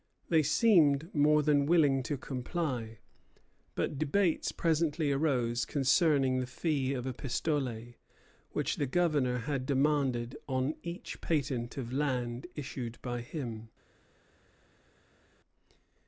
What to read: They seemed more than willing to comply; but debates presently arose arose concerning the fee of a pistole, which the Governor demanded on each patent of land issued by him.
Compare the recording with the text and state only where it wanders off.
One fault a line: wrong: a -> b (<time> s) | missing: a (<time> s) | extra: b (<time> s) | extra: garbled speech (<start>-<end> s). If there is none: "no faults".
missing: arose (5.6 s)
extra: had (9.4 s)